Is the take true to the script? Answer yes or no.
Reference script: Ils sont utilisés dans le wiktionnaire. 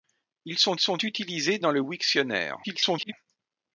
no